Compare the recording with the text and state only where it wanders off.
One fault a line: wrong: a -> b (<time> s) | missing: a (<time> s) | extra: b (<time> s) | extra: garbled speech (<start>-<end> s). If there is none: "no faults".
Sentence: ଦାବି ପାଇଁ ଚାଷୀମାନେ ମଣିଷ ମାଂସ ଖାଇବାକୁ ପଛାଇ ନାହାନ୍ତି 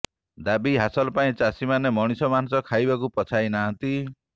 extra: ହାସଲ (0.8 s)